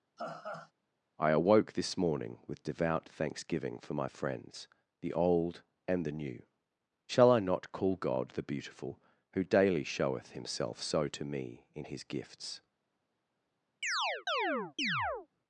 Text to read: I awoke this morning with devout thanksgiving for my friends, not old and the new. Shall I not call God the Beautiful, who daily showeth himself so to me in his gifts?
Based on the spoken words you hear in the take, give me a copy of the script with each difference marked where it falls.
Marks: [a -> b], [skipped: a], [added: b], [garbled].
I awoke this morning with devout thanksgiving for my friends, [not -> the] old and the new. Shall I not call God the Beautiful, who daily showeth himself so to me in his gifts?